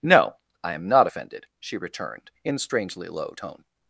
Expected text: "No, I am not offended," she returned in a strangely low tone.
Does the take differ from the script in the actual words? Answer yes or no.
yes